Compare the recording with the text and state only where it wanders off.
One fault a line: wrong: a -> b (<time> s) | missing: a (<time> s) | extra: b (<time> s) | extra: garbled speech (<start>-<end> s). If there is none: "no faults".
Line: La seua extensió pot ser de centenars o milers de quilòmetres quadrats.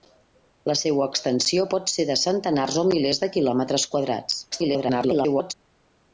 extra: garbled speech (4.5-5.5 s)